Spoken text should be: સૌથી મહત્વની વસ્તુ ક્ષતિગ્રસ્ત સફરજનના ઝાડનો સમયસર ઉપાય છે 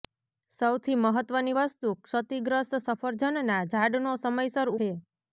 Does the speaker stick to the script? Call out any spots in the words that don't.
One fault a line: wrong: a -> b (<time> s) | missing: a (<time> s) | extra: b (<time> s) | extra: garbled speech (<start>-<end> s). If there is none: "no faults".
missing: ઉપાય (4.7 s)